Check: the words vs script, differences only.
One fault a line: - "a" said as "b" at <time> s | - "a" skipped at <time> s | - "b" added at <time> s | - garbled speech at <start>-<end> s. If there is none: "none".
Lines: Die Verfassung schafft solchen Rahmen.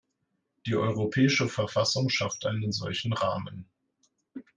- "Europäische" added at 0.8 s
- "einen" added at 2.5 s